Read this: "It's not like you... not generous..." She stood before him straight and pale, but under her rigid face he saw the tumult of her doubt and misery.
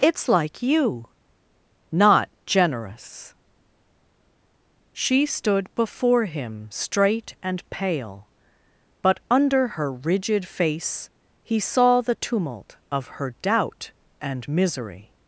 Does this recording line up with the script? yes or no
no